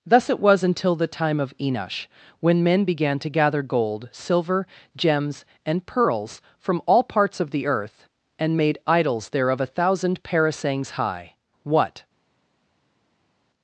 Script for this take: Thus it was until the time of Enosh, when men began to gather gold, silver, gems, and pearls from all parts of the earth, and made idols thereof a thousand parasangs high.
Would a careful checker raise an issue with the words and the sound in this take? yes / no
yes